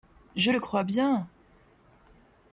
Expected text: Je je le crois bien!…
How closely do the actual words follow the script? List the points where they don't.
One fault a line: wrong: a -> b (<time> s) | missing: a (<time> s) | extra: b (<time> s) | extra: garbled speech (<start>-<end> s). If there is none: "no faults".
missing: je (0.5 s)